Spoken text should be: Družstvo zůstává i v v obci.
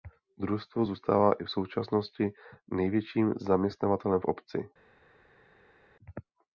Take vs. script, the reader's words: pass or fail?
fail